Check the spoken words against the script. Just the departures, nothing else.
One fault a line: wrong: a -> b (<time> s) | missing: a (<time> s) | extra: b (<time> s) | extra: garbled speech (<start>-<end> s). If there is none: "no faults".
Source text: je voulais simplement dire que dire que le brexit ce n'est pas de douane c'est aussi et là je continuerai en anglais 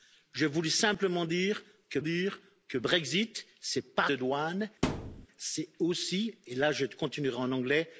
no faults